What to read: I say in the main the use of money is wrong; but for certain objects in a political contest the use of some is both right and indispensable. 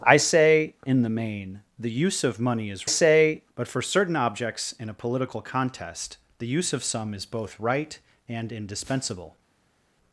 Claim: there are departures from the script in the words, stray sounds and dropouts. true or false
true